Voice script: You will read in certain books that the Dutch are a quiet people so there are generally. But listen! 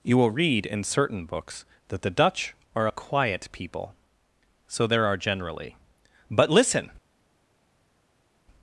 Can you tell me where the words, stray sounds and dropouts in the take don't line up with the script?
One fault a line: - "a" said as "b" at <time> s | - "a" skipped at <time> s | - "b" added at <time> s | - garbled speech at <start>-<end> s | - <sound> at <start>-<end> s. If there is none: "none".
none